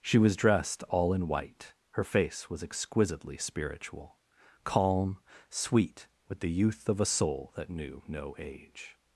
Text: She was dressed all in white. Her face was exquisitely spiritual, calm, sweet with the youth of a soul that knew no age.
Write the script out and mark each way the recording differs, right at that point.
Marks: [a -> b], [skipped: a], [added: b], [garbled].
She was dressed all in white. Her face was exquisitely spiritual, calm, sweet with the youth of a soul that knew no age.